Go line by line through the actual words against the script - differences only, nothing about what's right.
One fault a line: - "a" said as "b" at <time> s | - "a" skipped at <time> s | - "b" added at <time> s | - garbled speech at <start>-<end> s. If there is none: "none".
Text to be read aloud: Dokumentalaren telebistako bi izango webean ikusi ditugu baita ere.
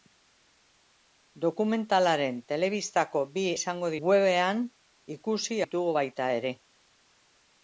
none